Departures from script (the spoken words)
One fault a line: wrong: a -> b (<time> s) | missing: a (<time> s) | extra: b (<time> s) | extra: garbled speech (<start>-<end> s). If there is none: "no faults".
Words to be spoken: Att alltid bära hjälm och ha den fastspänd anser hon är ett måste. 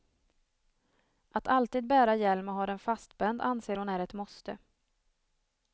no faults